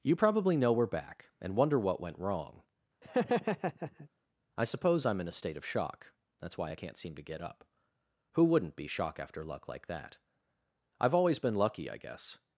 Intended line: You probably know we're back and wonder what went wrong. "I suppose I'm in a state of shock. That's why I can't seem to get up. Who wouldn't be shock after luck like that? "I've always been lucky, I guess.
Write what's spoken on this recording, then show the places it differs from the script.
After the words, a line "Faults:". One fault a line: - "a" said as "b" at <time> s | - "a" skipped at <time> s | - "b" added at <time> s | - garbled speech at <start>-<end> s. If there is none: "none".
You probably know we're back and wonder what went wrong. "I suppose I'm in a state of shock. That's why I can't seem to get up. Who wouldn't be shock after luck like that? "I've always been lucky, I guess.
Faults:
none